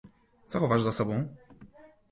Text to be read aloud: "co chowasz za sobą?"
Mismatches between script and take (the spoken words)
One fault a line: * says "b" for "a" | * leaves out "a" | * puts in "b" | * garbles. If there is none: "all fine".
all fine